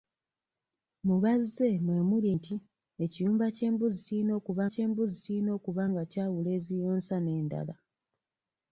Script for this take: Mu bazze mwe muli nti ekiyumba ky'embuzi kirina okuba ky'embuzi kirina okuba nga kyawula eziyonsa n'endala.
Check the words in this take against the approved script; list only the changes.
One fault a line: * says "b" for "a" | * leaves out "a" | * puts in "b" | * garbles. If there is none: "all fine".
all fine